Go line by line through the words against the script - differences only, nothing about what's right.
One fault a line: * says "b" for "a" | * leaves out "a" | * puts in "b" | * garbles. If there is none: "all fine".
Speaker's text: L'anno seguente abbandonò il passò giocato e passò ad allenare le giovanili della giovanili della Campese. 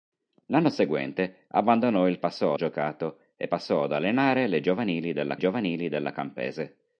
all fine